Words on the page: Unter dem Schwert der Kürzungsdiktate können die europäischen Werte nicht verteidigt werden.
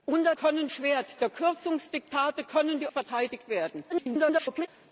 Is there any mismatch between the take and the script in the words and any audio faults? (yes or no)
yes